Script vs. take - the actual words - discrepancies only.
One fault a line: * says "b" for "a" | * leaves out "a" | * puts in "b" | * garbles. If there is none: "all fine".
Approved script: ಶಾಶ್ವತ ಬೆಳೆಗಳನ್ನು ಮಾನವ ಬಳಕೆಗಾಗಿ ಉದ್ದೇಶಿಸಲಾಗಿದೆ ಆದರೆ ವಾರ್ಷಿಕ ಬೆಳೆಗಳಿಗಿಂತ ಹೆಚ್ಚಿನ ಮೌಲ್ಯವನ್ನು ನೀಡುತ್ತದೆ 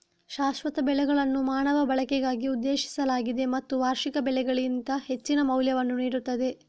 * says "ಮತ್ತು" for "ಆದರೆ"